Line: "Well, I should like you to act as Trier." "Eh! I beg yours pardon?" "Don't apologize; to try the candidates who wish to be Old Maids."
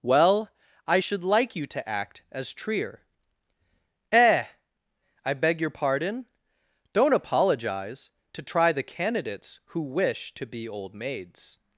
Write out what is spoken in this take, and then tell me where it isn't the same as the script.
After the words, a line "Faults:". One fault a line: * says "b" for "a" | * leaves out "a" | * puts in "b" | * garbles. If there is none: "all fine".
"Well, I should like you to act as Trier." "Eh! I beg your pardon?" "Don't apologize; to try the candidates who wish to be Old Maids."
Faults:
* says "your" for "yours"